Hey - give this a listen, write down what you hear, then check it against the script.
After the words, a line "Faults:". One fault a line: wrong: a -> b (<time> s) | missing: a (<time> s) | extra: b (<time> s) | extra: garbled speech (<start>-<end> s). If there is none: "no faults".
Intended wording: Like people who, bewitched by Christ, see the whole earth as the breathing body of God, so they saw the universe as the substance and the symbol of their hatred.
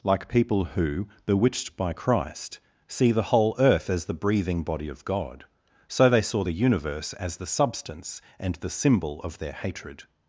Like people who, bewitched by Christ, see the whole earth as the breathing body of God, so they saw the universe as the substance and the symbol of their hatred.
Faults:
no faults